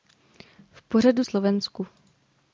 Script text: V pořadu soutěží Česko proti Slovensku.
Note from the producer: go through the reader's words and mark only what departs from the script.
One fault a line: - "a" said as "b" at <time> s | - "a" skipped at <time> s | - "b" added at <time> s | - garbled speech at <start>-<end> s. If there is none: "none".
- "soutěží Česko proti" skipped at 1.2 s